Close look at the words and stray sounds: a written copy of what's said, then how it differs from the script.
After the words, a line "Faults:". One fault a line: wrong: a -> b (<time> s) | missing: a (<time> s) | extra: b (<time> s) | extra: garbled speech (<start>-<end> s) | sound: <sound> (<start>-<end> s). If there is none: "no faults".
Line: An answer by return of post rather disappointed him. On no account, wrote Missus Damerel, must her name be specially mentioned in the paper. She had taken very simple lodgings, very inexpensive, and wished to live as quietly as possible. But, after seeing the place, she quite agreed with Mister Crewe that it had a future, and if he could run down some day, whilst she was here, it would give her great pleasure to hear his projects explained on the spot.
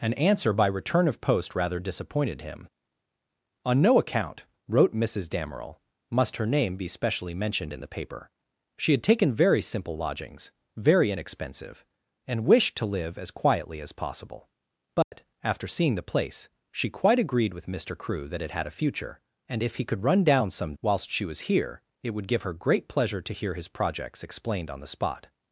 An answer by return of post rather disappointed him. On no account, wrote Missus Damerel, must her name be specially mentioned in the paper. She had taken very simple lodgings, very inexpensive, and wished to live as quietly as possible. But, after seeing the place, she quite agreed with Mister Crewe that it had a future, and if he could run down some whilst she was here, it would give her great pleasure to hear his projects explained on the spot.
Faults:
sound: dropout (15.0-15.1 s)
missing: day (20.7 s)